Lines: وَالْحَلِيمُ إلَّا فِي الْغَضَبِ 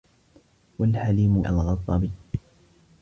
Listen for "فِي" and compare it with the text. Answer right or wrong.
wrong